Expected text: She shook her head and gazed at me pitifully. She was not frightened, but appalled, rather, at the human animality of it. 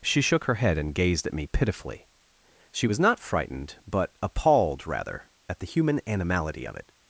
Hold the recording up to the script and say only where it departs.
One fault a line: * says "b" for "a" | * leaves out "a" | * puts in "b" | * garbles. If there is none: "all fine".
all fine